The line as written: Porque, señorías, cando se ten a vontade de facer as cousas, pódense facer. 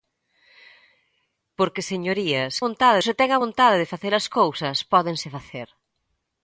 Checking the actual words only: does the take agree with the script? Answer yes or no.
no